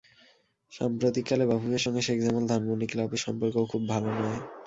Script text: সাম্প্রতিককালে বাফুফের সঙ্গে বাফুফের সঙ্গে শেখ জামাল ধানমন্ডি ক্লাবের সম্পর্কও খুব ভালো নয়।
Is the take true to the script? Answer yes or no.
no